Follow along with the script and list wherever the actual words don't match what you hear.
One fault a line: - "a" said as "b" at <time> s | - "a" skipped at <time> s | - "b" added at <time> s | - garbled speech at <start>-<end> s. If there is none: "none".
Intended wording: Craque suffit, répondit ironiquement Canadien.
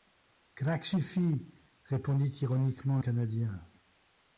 none